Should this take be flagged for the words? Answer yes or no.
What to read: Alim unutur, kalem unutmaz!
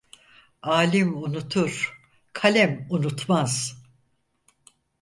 no